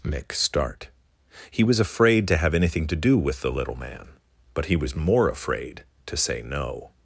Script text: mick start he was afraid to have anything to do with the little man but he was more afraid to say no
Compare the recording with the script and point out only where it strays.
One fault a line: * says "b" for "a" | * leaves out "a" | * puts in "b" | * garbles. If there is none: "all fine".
all fine